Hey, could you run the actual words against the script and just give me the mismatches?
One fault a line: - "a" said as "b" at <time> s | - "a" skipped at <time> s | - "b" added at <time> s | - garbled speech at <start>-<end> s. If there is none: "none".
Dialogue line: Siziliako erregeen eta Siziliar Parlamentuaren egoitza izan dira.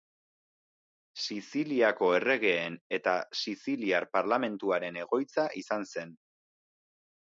- "dira" said as "zen" at 6.0 s